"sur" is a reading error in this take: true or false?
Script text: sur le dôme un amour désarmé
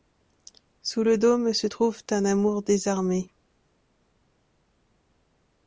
true